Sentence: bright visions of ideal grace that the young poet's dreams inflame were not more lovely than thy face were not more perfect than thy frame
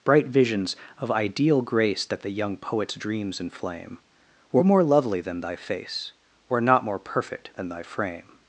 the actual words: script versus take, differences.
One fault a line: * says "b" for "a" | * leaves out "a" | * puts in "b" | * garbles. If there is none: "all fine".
* leaves out "not"